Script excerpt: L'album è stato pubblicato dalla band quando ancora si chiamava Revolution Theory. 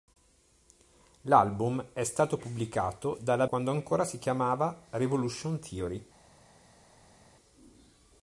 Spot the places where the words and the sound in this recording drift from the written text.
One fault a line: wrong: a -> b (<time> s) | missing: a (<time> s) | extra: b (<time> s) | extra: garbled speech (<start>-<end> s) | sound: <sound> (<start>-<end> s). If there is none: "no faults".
missing: band (3.5 s)